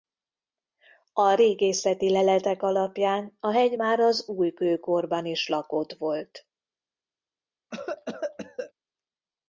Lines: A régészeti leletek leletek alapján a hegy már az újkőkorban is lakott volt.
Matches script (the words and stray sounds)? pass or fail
fail